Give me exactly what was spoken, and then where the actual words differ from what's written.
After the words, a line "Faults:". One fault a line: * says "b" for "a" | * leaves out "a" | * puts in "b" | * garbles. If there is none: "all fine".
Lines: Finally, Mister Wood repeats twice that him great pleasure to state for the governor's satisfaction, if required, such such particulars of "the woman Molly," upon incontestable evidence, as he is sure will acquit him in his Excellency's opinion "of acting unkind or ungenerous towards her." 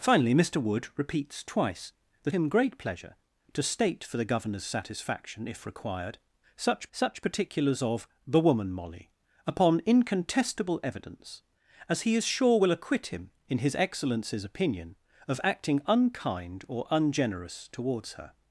Finally, Mister Wood repeats twice that him great pleasure to state for the governor's satisfaction, if required, such such particulars of "the woman Molly," upon incontestable evidence, as he is sure will acquit him in his Excellency's opinion "of acting unkind or ungenerous towards her."
Faults:
all fine